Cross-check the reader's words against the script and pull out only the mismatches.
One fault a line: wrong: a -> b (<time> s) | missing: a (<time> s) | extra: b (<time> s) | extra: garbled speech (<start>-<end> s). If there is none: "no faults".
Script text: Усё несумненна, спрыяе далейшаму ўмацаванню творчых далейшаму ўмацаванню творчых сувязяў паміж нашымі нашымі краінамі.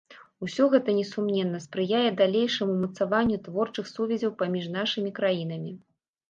extra: гэта (0.8 s)
missing: далейшаму ўмацаванню творчых (3.9 s)
missing: нашымі (5.1 s)